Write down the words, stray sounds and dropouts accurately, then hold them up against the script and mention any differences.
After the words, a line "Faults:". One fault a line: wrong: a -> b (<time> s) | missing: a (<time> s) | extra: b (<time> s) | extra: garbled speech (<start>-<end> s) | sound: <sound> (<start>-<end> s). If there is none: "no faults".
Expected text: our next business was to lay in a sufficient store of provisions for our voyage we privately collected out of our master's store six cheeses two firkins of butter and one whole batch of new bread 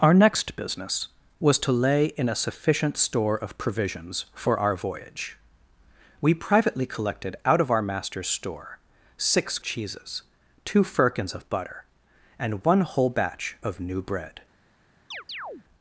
our next business was to lay in a sufficient store of provisions for our voyage we privately collected out of our master's store six cheeses two firkins of butter and one whole batch of new bread
Faults:
sound: chirp (15.1-15.6 s)